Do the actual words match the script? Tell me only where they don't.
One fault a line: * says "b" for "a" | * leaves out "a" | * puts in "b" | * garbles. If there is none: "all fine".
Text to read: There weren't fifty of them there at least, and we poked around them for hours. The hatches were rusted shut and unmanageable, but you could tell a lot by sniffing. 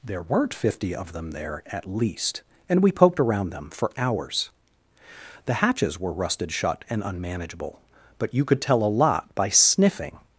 all fine